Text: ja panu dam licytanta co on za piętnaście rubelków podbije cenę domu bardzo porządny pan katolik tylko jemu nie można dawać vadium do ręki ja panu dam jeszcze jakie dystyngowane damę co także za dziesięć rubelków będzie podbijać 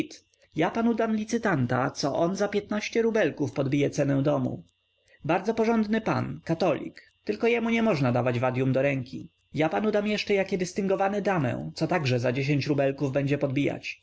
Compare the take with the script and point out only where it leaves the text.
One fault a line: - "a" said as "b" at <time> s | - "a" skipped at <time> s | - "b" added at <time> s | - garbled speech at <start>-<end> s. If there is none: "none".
none